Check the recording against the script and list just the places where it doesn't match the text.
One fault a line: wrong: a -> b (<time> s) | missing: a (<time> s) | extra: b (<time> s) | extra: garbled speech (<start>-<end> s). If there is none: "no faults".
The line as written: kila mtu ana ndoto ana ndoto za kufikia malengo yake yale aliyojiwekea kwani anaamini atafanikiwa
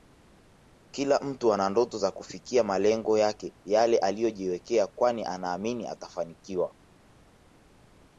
missing: ana ndoto (2.0 s)